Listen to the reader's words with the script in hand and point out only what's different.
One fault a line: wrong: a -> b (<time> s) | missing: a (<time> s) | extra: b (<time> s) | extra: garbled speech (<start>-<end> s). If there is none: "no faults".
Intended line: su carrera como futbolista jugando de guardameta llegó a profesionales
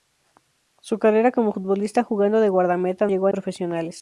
no faults